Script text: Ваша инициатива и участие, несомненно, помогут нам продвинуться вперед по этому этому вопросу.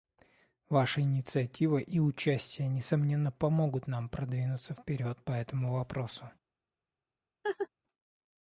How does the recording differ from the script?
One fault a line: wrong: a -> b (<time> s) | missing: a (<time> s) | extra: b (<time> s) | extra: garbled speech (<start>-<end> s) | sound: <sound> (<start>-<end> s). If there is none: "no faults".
missing: этому (5.7 s)
sound: laugh (7.4-7.7 s)